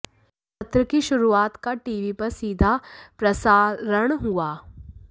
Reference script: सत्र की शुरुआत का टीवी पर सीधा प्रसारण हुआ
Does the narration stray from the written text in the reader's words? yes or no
no